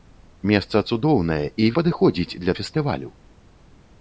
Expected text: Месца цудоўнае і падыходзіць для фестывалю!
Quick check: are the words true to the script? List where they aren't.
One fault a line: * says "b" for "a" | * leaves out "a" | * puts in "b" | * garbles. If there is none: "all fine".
all fine